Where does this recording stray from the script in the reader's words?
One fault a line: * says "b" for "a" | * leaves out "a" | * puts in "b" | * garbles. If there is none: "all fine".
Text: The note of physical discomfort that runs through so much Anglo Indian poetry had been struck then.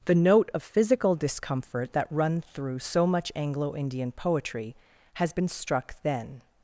* says "run" for "runs"
* says "has" for "had"